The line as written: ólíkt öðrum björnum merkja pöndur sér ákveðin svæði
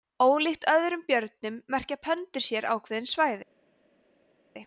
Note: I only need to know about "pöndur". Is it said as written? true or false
true